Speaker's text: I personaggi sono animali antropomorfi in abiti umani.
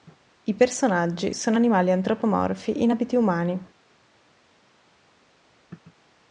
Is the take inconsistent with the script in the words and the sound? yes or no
no